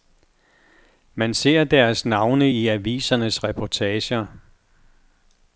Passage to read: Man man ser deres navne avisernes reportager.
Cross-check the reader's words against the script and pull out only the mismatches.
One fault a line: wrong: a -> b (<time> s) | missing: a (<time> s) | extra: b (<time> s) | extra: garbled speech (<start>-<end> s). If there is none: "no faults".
missing: man (1.3 s)
extra: i (2.5 s)